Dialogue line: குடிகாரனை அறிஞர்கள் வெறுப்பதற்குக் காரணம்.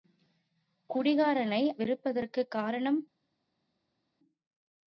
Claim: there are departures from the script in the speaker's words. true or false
true